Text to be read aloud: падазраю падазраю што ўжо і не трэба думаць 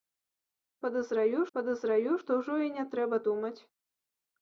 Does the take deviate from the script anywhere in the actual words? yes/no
no